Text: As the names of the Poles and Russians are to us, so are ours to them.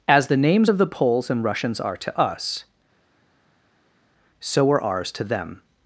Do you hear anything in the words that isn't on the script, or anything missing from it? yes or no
no